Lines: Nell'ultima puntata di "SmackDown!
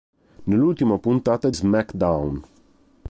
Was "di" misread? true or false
true